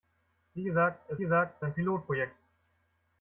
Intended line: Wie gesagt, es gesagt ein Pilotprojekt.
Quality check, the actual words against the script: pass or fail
pass